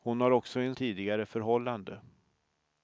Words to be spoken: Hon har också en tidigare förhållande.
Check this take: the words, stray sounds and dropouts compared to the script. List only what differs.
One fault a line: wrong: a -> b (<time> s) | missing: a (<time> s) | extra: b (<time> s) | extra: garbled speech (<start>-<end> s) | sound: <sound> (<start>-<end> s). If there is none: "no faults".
no faults